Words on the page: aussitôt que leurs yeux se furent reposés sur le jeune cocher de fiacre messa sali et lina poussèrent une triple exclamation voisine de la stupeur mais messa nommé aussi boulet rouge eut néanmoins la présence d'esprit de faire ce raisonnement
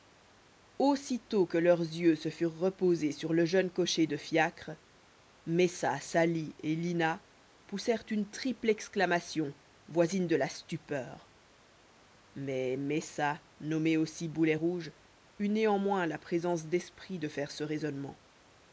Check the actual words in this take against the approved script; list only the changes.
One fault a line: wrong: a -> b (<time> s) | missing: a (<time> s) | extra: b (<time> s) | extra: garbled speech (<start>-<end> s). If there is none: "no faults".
no faults